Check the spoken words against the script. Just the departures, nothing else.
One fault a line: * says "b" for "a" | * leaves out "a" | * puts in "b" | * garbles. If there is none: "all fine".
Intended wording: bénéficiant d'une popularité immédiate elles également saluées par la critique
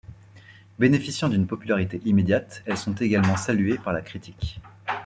* puts in "sont"